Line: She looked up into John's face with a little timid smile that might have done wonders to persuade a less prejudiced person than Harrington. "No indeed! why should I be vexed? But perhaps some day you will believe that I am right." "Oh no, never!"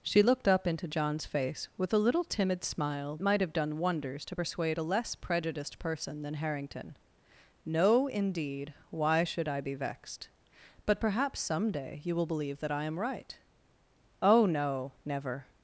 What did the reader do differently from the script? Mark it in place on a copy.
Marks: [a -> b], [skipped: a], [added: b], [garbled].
She looked up into John's face with a little timid smile [skipped: that] might have done wonders to persuade a less prejudiced person than Harrington. "No indeed! why should I be vexed? But perhaps some day you will believe that I am right." "Oh no, never!"